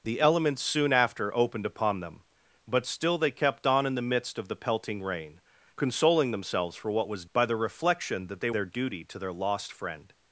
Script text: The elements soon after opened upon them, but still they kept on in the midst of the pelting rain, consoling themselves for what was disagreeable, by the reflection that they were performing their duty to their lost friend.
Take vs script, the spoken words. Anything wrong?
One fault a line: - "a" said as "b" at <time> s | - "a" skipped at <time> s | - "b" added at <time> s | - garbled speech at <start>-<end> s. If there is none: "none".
- "disagreeable" skipped at 7.2 s
- "were performing" skipped at 8.5 s